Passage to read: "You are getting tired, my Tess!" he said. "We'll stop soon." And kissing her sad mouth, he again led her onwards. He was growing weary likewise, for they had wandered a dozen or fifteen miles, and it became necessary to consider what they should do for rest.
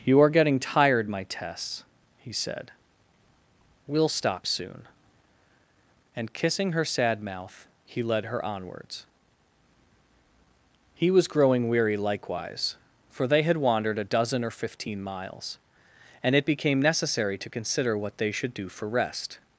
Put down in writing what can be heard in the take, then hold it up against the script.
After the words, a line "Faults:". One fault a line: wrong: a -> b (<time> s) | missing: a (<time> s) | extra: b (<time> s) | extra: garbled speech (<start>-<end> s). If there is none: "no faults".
"You are getting tired, my Tess!" he said. "We'll stop soon." And kissing her sad mouth, he led her onwards. He was growing weary likewise, for they had wandered a dozen or fifteen miles, and it became necessary to consider what they should do for rest.
Faults:
missing: again (8.0 s)